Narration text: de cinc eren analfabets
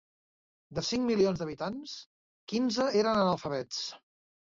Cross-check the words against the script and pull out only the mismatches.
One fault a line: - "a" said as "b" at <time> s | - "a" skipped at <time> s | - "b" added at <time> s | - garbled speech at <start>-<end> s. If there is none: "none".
- "milions d'habitants quinze" added at 1.1 s